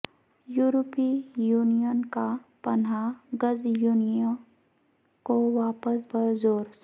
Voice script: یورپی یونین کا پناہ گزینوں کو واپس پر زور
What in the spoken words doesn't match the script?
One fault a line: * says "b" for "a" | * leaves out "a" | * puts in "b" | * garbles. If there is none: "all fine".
all fine